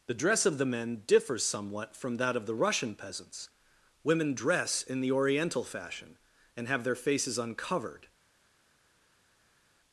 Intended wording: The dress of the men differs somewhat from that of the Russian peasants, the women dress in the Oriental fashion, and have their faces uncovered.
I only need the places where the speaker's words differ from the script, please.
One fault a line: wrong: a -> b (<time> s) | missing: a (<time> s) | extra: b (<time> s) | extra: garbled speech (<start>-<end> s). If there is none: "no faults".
missing: the (3.5 s)